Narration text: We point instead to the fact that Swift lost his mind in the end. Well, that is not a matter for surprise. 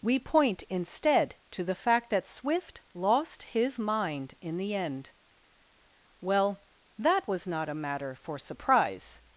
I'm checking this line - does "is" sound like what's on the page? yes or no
no